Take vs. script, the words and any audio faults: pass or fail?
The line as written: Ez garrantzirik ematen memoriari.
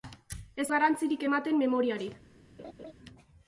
fail